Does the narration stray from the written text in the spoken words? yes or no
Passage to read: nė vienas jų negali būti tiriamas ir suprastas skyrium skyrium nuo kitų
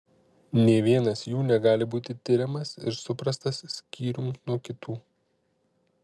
yes